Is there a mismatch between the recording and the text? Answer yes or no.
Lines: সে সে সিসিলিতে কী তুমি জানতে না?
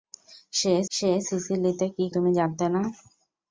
no